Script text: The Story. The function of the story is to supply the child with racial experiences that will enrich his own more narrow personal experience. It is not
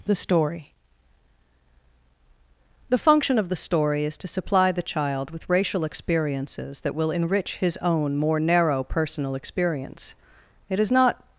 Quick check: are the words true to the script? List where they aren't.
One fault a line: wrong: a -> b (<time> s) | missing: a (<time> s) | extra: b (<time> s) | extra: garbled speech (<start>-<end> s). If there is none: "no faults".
no faults